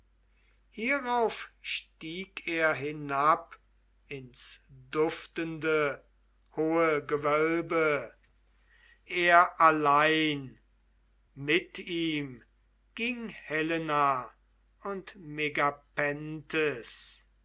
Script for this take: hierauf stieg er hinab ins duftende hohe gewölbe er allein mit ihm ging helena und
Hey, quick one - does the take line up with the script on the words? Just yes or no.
yes